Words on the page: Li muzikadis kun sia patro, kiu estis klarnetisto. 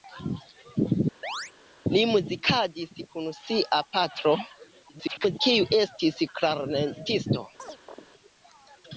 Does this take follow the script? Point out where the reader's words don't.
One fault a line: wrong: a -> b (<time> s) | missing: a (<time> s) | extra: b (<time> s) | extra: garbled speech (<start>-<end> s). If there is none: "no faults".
extra: garbled speech (4.9-5.4 s)